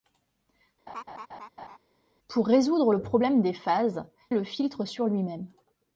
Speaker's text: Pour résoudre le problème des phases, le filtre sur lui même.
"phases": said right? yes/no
yes